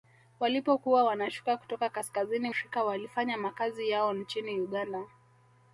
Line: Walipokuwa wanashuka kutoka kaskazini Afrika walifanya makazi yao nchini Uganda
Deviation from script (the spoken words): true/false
false